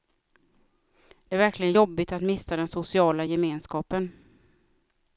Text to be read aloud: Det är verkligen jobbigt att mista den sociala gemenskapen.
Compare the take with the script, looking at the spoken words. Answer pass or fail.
pass